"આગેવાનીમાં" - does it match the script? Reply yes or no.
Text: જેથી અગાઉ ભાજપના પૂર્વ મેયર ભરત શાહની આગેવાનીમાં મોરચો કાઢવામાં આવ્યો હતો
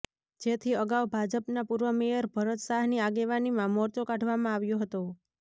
yes